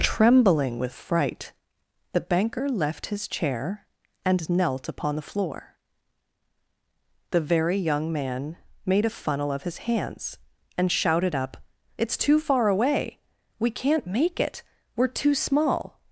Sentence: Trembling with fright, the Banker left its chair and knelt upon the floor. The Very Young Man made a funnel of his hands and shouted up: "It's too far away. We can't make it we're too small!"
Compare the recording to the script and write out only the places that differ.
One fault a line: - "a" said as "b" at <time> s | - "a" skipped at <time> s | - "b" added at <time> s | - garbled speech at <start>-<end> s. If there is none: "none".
- "its" said as "his" at 3.1 s